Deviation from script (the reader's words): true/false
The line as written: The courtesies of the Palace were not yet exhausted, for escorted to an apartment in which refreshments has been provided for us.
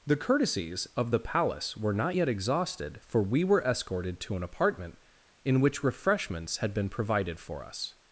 true